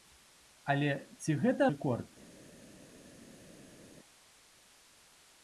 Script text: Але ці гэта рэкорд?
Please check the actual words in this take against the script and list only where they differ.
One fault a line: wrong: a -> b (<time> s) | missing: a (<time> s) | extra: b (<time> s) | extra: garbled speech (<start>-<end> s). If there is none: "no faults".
no faults